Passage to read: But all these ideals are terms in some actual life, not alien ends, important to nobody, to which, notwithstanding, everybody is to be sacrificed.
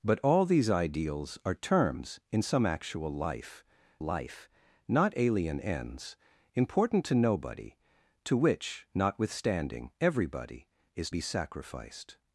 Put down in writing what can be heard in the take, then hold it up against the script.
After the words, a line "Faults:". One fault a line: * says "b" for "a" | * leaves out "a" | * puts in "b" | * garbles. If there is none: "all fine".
But all these ideals are terms in some actual life life, not alien ends, important to nobody, to which, notwithstanding, everybody is be sacrificed.
Faults:
* puts in "life"
* leaves out "to"